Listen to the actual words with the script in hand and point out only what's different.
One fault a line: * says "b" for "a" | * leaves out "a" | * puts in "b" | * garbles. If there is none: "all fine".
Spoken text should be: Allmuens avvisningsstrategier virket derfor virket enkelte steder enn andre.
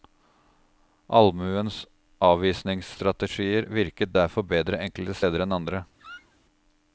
* says "bedre" for "virket"